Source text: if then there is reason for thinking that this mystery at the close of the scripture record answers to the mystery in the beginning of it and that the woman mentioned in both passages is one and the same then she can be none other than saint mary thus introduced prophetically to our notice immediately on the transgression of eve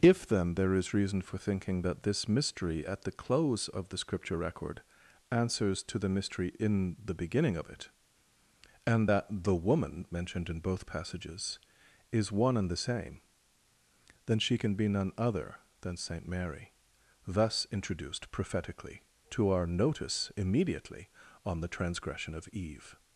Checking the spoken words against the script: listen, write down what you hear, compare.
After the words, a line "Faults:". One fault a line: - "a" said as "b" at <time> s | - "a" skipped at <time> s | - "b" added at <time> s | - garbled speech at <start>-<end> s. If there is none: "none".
if then there is reason for thinking that this mystery at the close of the scripture record answers to the mystery in the beginning of it and that the woman mentioned in both passages is one and the same then she can be none other than saint mary thus introduced prophetically to our notice immediately on the transgression of eve
Faults:
none